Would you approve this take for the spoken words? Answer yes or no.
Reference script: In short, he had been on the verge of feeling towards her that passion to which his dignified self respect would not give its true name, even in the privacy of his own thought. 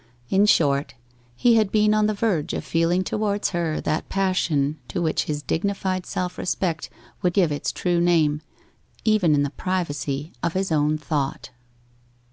no